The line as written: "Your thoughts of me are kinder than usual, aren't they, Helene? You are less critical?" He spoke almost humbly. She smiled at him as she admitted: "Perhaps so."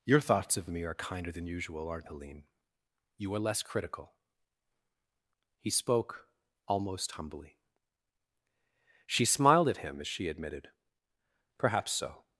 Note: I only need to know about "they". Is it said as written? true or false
false